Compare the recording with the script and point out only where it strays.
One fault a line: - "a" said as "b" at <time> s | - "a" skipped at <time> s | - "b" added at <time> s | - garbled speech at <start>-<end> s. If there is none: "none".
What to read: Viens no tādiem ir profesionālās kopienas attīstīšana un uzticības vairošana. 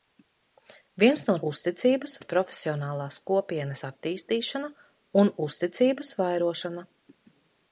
- "tādiem" said as "uzticības" at 1.5 s